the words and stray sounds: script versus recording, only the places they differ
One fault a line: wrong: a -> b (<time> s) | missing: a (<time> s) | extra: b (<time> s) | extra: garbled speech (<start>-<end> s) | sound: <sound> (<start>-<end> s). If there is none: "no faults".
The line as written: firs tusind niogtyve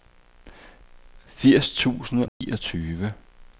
sound: dropout (2.3-2.4 s)